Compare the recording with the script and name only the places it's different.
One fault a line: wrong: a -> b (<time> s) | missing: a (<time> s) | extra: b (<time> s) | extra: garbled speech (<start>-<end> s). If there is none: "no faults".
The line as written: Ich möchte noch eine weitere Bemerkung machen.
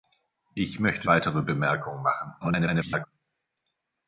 missing: noch eine (1.1 s)
extra: garbled speech (2.4-3.1 s)